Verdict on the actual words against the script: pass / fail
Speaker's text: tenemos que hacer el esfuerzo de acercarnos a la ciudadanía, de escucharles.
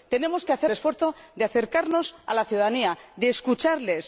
fail